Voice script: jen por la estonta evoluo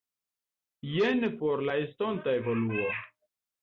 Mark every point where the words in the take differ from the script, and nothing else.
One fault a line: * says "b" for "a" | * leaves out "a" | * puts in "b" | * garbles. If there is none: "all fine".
all fine